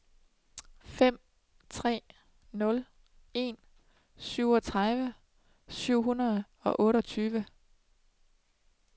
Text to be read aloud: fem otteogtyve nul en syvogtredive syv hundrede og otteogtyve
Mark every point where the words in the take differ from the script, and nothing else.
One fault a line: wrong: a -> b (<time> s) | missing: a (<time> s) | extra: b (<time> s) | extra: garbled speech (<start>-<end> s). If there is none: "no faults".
wrong: otteogtyve -> tre (1.7 s)